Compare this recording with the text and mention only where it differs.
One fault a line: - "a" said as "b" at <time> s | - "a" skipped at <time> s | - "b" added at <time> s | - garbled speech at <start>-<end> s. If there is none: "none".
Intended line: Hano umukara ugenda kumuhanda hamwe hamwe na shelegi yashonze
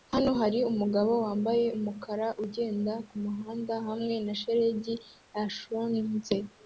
- "hari umugabo wambaye" added at 0.4 s
- "hamwe" skipped at 4.1 s